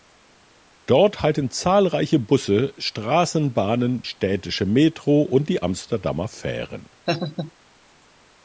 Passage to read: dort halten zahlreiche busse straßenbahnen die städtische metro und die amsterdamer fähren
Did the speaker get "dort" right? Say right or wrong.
right